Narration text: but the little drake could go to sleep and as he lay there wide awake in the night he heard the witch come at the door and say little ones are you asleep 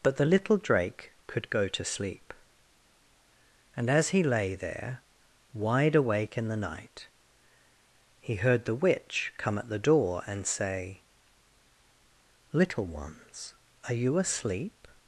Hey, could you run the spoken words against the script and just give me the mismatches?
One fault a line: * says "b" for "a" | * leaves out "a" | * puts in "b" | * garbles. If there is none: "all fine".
all fine